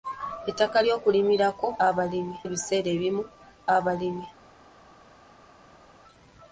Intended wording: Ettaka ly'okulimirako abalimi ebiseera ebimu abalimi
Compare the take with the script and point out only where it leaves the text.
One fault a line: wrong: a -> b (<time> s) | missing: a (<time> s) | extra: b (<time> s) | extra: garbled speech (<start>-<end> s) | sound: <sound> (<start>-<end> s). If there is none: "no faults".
no faults